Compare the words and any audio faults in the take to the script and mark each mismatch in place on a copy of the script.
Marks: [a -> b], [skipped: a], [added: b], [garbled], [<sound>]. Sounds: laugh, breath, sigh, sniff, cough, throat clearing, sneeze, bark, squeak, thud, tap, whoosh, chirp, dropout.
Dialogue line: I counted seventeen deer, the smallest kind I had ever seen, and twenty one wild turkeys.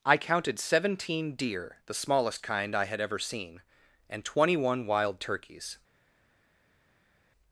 I counted seventeen deer, the smallest kind I had ever seen, and twenty one wild turkeys.